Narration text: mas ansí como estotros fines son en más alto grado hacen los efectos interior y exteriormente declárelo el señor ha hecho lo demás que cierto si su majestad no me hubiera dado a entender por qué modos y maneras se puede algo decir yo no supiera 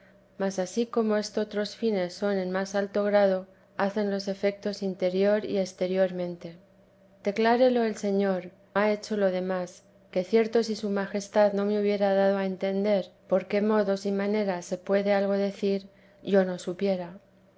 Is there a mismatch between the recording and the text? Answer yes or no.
no